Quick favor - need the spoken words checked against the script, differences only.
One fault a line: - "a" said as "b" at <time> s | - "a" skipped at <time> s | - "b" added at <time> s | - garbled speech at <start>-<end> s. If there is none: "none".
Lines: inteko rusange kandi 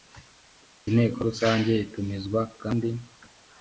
- "itumizwa" added at 1.8 s